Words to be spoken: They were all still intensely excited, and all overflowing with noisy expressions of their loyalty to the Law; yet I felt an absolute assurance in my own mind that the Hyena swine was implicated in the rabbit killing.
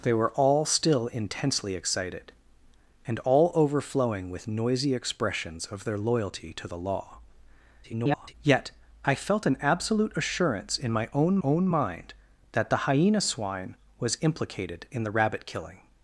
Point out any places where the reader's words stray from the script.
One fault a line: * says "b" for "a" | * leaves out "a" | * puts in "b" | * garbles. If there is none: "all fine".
* garbles
* puts in "own"